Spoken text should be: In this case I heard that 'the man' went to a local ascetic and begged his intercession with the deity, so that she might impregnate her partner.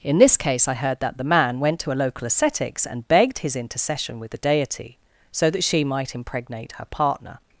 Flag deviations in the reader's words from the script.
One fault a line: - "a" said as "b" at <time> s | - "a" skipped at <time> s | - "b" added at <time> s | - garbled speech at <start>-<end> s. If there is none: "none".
- "ascetic" said as "ascetics" at 2.2 s